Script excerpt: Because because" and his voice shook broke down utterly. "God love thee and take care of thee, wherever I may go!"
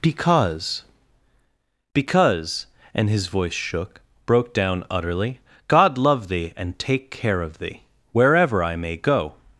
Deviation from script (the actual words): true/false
false